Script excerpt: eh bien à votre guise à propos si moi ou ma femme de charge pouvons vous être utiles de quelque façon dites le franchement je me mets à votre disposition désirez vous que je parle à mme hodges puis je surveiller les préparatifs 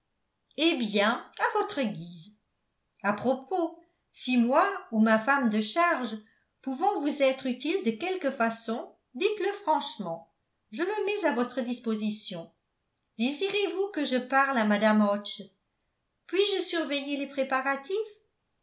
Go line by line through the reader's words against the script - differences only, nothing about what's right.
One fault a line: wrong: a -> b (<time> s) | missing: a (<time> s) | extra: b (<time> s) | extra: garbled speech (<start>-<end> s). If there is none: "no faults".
no faults